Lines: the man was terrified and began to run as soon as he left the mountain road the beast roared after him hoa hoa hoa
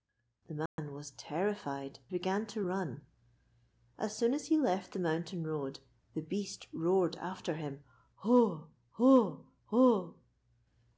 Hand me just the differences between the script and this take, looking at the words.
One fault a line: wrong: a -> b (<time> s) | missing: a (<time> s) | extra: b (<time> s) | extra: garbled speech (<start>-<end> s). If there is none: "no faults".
missing: and (2.0 s)